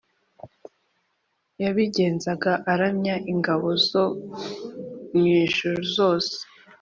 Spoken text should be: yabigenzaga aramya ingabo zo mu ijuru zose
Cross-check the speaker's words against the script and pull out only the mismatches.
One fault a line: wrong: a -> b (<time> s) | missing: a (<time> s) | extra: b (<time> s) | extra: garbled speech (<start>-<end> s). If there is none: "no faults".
no faults